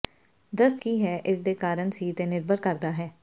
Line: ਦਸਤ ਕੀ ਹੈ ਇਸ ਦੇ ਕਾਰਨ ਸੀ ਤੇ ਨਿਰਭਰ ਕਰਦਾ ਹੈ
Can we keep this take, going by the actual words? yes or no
yes